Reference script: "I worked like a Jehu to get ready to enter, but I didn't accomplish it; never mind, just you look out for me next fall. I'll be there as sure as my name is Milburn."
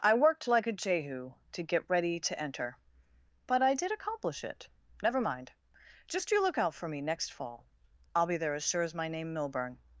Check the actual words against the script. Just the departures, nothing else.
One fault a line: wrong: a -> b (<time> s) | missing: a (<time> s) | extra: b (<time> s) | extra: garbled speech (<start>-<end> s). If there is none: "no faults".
wrong: didn't -> did (3.8 s)
missing: is (9.3 s)